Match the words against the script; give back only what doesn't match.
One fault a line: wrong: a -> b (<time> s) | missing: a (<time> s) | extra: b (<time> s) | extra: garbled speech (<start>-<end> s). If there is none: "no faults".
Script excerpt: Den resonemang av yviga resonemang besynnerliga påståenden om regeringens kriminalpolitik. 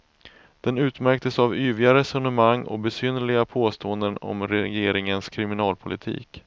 wrong: resonemang -> utmärktes (0.8 s)
extra: och (2.6 s)